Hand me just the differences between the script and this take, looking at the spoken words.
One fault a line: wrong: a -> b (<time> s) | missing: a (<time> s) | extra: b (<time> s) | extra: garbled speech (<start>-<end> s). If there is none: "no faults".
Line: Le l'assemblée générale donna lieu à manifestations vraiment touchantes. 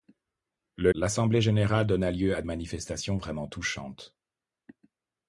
no faults